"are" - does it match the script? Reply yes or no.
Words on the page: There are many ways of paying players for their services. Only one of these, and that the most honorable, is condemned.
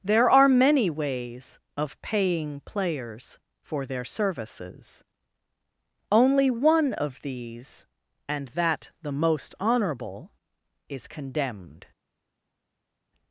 yes